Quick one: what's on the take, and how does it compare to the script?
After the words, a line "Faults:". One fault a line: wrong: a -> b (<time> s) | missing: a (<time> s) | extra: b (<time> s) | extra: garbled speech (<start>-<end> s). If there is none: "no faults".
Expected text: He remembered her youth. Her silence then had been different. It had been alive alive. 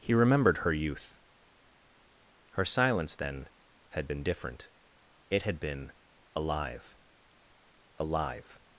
He remembered her youth. Her silence then had been different. It had been alive alive.
Faults:
no faults